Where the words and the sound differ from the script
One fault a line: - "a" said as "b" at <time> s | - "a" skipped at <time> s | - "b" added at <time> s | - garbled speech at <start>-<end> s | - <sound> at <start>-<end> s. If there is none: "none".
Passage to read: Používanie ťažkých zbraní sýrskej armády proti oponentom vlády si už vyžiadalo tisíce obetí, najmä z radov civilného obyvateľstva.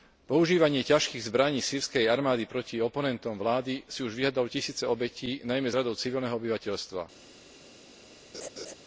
- laugh at 8.3-8.7 s